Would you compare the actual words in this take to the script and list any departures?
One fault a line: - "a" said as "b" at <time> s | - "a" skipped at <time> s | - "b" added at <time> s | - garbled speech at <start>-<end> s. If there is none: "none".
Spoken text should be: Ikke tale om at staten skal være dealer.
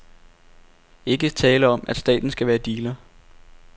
none